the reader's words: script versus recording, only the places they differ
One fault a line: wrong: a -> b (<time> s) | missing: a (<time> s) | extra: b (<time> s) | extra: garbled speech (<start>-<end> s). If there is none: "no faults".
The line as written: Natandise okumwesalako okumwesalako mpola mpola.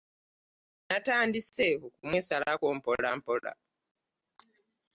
missing: okumwesalako (2.7 s)